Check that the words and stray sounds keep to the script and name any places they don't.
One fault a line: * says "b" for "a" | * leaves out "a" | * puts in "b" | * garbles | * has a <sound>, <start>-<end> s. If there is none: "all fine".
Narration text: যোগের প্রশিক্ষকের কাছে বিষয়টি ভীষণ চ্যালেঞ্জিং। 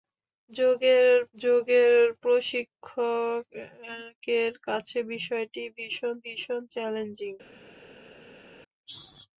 * puts in "যোগের"
* puts in "ভীষণ"